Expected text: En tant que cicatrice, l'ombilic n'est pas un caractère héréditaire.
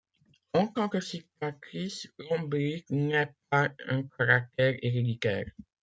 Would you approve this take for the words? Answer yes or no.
yes